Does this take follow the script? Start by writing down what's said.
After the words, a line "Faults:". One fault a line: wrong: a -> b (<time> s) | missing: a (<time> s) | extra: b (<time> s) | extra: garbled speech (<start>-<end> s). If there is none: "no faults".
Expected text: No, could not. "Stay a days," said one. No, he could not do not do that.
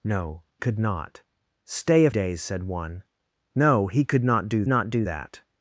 No, could not. "Stay a days," said one. No, he could not do not do that.
Faults:
no faults